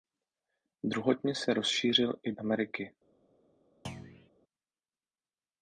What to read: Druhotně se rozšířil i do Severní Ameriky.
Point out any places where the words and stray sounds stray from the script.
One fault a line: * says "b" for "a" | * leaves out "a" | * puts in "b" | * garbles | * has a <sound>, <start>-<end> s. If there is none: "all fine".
* leaves out "do Severní"
* has a thud, 3.8-4.3 s